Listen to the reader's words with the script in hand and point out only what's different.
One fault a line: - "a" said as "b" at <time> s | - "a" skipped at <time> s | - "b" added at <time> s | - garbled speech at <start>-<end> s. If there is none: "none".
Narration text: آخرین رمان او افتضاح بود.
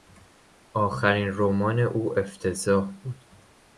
none